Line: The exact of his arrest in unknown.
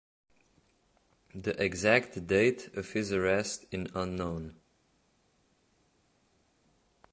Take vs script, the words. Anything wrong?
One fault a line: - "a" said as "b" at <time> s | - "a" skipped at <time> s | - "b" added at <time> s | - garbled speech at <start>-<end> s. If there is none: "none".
- "date" added at 2.2 s